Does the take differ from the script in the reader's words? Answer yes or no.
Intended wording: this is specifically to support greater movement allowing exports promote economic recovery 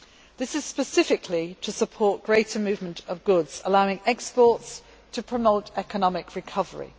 yes